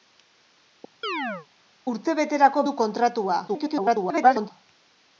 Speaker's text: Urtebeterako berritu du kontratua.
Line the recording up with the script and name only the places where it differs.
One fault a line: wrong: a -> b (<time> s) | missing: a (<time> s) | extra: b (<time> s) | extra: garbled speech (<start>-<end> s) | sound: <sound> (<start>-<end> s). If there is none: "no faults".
sound: chirp (1.0-1.5 s)
missing: berritu (2.6 s)
extra: garbled speech (3.5-4.5 s)